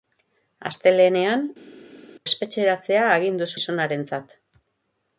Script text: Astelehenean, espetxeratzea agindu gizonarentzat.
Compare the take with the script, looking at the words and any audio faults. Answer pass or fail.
pass